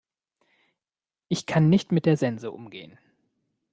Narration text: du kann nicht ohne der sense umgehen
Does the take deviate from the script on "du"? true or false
true